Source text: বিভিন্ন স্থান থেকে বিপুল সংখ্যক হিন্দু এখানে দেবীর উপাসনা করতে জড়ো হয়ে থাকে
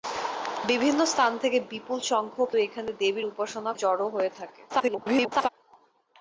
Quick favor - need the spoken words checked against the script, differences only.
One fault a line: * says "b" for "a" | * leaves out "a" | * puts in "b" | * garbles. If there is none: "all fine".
* leaves out "হিন্দু"
* leaves out "করতে"
* garbles